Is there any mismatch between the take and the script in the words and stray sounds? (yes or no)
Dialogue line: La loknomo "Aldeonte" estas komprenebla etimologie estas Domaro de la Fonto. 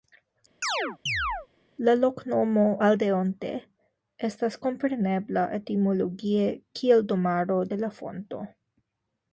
yes